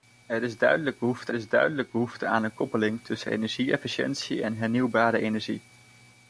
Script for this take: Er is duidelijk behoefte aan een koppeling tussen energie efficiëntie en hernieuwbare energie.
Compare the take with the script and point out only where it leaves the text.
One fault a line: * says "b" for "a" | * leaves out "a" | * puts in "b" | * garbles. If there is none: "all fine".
* puts in "is duidelijk behoefte"